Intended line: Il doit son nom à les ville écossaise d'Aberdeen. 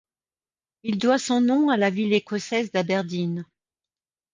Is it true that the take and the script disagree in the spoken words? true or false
true